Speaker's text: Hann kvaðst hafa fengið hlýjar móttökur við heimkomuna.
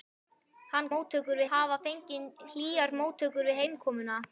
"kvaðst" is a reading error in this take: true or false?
true